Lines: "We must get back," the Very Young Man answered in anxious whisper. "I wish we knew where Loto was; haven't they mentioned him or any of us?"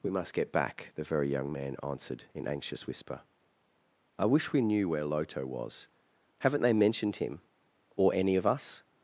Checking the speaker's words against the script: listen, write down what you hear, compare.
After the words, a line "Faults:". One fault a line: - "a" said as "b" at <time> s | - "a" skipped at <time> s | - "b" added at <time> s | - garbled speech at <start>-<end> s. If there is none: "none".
"We must get back," the Very Young Man answered in anxious whisper. "I wish we knew where Loto was; haven't they mentioned him or any of us?"
Faults:
none